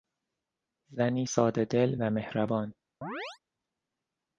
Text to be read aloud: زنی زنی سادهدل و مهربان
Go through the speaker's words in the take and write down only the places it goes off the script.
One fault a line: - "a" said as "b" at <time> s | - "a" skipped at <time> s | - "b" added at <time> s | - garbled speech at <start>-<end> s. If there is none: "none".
- "زنی" skipped at 1.2 s